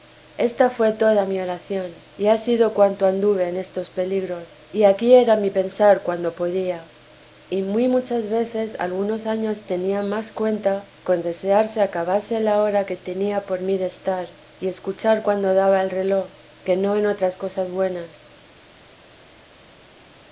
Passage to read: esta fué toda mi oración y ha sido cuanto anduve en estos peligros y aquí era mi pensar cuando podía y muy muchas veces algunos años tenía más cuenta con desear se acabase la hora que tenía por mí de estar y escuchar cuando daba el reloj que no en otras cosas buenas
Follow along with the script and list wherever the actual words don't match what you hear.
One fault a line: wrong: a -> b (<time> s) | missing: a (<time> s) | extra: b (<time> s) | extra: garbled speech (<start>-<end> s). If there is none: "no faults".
no faults